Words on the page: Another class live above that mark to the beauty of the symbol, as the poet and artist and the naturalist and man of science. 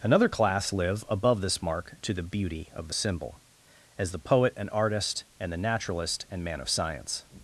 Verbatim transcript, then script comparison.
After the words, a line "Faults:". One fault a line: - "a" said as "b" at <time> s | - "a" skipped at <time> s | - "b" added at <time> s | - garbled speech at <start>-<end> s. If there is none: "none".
Another class live above this mark to the beauty of the symbol, as the poet and artist and the naturalist and man of science.
Faults:
- "that" said as "this" at 1.4 s